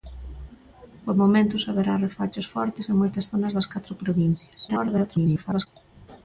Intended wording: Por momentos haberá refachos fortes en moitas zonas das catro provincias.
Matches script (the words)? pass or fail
fail